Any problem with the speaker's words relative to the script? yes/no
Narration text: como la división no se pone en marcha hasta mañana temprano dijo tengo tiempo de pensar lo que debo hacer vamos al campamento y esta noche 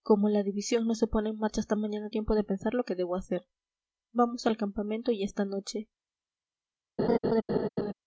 yes